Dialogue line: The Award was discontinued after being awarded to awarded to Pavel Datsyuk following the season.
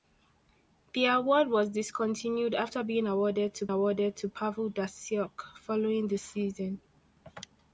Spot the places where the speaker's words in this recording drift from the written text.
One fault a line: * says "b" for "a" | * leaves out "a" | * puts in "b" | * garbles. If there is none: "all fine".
all fine